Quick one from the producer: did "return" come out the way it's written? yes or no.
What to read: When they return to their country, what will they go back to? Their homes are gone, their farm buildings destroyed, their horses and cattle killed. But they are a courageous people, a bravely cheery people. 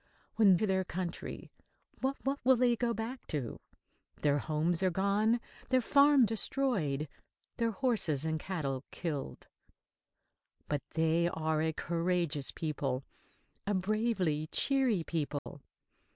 no